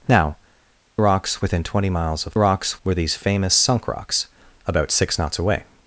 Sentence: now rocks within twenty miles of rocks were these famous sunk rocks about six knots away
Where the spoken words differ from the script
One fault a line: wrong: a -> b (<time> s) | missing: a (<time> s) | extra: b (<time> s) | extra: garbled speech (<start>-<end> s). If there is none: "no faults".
no faults